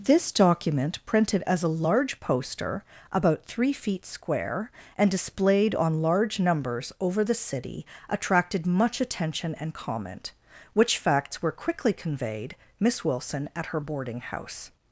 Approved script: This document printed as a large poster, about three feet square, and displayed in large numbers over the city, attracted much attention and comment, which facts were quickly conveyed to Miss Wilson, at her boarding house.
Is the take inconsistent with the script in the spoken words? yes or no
yes